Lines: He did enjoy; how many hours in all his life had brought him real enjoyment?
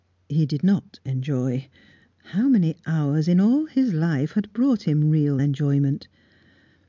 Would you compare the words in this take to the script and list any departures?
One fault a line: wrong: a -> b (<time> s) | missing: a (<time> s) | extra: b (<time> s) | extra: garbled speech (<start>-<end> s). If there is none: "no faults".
extra: not (0.6 s)